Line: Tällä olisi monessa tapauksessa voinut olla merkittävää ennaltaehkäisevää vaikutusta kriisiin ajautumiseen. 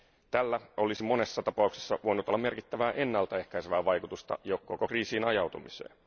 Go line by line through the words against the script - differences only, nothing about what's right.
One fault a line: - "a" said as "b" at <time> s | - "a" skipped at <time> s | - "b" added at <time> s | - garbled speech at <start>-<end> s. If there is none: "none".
- "jo koko" added at 4.4 s